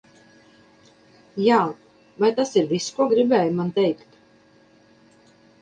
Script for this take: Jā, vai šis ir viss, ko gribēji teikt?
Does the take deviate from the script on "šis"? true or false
true